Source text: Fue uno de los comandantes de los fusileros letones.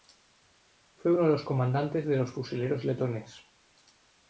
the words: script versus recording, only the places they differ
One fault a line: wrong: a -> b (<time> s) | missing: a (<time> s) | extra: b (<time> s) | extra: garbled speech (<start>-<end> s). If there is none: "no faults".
no faults